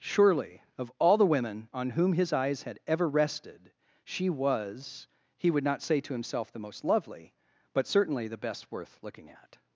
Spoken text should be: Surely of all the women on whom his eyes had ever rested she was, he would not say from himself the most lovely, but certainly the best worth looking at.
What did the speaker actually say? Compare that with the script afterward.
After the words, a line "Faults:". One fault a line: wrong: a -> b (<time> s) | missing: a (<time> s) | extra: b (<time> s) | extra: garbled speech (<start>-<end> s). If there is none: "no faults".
Surely of all the women on whom his eyes had ever rested she was, he would not say to himself the most lovely, but certainly the best worth looking at.
Faults:
wrong: from -> to (6.0 s)